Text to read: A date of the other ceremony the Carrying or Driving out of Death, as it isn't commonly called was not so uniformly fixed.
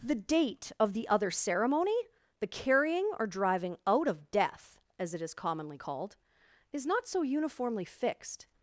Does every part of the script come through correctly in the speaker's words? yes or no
no